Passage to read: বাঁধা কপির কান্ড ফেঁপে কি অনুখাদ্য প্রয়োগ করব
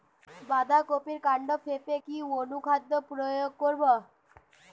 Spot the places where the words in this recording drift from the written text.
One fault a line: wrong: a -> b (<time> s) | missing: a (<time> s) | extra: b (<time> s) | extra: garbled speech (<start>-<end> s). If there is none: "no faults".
no faults